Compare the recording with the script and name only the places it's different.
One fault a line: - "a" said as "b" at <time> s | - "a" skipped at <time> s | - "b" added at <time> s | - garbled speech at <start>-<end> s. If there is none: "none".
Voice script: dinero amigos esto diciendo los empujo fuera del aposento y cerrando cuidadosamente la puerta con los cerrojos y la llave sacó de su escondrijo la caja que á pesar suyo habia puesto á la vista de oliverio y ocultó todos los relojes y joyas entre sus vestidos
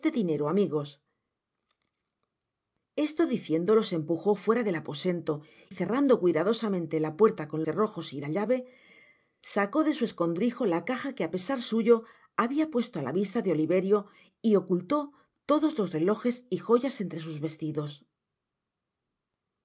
- "y" skipped at 5.4 s
- "los" skipped at 7.6 s